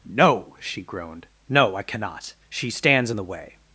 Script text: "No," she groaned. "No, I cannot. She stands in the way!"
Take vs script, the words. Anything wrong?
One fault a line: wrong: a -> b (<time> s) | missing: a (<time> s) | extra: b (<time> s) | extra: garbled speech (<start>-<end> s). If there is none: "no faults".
no faults